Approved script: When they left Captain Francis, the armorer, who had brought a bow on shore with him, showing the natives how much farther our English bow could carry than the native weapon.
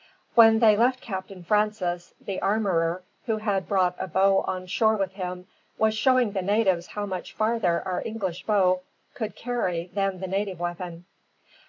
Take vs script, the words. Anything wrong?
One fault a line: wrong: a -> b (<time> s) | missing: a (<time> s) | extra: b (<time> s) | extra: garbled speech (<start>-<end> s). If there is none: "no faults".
extra: was (5.8 s)